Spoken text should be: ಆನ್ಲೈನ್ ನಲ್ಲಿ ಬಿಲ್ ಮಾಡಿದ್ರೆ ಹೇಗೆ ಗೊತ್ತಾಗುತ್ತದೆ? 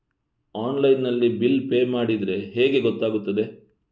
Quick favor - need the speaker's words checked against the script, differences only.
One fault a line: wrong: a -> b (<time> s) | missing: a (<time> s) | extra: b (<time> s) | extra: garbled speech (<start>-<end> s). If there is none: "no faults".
extra: ಪೇ (1.7 s)